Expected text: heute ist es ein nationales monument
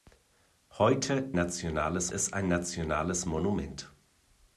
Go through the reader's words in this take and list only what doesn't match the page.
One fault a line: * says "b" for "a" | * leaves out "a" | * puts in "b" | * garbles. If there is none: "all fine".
* says "nationales" for "ist"